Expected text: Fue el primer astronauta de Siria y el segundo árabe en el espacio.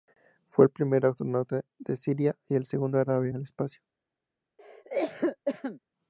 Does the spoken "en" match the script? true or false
false